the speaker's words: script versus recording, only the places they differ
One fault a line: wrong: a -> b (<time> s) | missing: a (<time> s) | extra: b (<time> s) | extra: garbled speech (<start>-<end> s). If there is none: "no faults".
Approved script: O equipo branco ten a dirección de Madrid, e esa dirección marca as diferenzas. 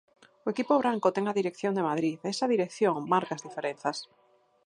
no faults